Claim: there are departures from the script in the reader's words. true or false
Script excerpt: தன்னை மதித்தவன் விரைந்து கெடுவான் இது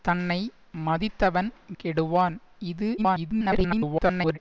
true